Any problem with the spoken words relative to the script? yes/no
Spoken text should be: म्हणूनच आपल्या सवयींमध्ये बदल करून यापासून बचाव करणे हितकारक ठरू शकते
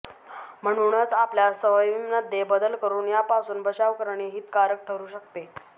no